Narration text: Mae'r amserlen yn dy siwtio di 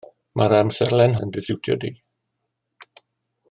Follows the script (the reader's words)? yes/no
yes